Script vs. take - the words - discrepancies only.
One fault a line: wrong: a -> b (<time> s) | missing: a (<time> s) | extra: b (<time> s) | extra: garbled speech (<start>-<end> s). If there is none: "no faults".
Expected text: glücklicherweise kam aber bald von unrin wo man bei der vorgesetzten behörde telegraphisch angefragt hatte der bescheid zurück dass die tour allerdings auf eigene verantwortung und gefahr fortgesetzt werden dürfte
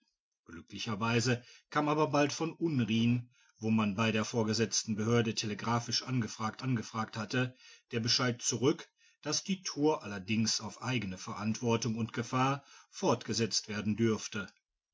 extra: angefragt (6.6 s)